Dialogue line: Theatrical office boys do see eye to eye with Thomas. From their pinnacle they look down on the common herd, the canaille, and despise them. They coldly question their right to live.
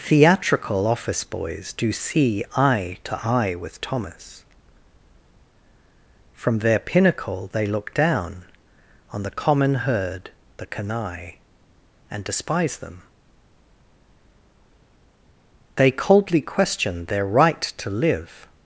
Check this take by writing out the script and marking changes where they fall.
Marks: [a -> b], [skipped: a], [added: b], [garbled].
Theatrical office boys do see eye to eye with Thomas. From their pinnacle they look down on the common herd, the canaille, and despise them. They coldly question their right to live.